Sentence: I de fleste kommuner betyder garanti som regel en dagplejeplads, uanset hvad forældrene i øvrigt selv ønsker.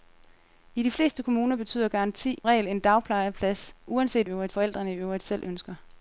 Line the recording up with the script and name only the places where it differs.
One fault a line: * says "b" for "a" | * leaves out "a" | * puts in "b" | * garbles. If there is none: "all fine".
* leaves out "som"
* says "øvrigt" for "hvad"